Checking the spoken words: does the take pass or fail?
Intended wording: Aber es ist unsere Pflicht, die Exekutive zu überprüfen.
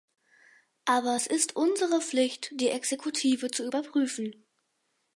pass